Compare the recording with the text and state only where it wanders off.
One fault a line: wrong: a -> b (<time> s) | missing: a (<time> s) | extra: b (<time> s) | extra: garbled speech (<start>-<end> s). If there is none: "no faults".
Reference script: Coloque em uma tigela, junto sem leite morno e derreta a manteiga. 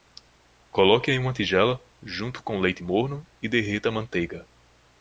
wrong: sem -> com (2.4 s)